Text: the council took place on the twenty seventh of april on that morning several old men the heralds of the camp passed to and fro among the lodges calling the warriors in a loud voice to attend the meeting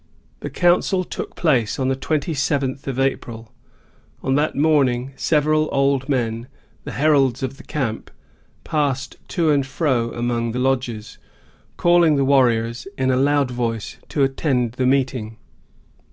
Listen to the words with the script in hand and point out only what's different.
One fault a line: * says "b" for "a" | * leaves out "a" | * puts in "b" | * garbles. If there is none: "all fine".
all fine